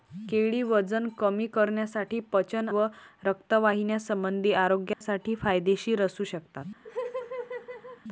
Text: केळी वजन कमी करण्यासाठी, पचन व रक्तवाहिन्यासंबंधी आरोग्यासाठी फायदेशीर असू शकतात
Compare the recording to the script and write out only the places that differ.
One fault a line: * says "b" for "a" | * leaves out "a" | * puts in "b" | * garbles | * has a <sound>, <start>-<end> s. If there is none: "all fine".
* has a dropout, 4.9-5.0 s
* has a laugh, 6.8-8.0 s